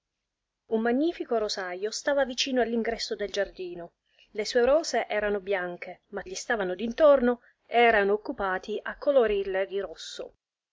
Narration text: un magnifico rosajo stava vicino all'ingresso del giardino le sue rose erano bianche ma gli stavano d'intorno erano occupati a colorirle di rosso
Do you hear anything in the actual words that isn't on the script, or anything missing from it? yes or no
no